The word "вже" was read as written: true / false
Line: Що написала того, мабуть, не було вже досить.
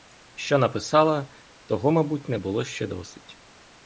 false